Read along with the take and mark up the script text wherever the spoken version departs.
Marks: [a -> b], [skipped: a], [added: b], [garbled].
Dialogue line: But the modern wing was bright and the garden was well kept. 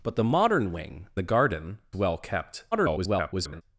But the modern wing [skipped: was bright and] the garden [skipped: was] well kept. [garbled]